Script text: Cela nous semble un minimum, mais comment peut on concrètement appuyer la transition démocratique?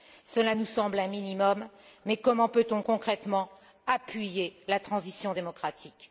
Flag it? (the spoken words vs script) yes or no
no